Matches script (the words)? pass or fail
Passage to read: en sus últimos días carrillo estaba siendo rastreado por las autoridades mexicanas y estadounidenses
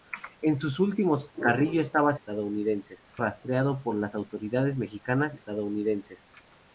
fail